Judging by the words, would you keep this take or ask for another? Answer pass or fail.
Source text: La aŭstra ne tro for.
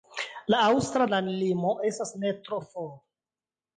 fail